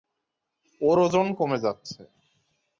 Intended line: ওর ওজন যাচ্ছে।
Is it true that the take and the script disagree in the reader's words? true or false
true